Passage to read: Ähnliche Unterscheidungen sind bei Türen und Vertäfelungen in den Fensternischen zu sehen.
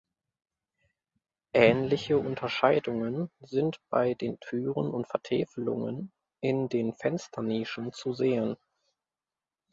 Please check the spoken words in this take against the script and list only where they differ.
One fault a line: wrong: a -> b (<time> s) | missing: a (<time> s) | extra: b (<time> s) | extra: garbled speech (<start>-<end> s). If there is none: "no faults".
extra: den (4.2 s)